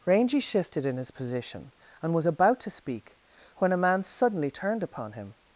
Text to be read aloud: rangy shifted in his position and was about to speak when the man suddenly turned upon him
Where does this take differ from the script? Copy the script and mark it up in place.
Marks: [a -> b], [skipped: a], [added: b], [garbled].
rangy shifted in his position and was about to speak when [the -> a] man suddenly turned upon him